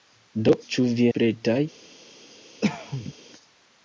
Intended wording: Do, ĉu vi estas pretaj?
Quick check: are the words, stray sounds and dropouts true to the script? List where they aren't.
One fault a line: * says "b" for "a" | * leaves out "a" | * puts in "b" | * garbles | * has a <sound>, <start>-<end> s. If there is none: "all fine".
* leaves out "estas"
* has a cough, 2.6-3.1 s